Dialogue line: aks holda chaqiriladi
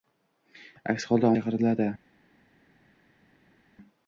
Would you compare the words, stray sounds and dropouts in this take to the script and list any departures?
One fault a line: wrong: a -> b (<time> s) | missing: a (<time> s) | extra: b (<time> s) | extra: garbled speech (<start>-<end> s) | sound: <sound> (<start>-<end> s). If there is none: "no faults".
no faults